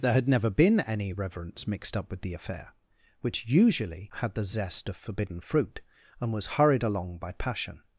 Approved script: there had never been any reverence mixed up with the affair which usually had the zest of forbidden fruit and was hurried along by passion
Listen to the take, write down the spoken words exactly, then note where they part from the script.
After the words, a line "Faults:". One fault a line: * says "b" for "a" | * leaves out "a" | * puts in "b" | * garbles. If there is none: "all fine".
there had never been any reverence mixed up with the affair which usually had the zest of forbidden fruit and was hurried along by passion
Faults:
all fine